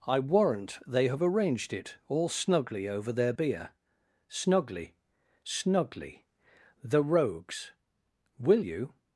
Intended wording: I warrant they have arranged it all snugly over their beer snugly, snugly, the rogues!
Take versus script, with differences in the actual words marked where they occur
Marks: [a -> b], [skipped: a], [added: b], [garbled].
I warrant they have arranged it all snugly over their beer snugly, snugly, the rogues! [added: Will you]